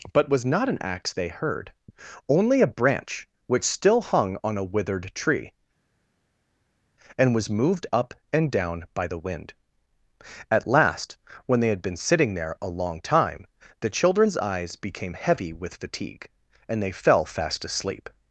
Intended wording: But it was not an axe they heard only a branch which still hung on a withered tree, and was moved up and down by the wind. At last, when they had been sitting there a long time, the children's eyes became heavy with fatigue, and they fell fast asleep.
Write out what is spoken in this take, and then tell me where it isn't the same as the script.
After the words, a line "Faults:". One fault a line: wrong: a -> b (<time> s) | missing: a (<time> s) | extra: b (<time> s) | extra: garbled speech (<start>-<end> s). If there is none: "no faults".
But was not an axe they heard only a branch which still hung on a withered tree, and was moved up and down by the wind. At last, when they had been sitting there a long time, the children's eyes became heavy with fatigue, and they fell fast asleep.
Faults:
missing: it (0.3 s)